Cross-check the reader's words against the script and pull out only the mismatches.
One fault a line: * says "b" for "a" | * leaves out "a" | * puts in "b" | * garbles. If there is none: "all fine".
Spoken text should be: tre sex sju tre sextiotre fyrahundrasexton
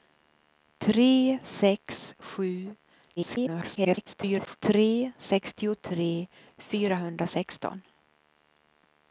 * garbles